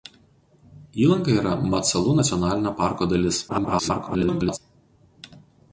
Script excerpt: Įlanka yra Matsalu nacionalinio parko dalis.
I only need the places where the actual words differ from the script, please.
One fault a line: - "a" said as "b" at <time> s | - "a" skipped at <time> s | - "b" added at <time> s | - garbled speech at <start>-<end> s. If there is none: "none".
- garbled speech at 3.5-4.6 s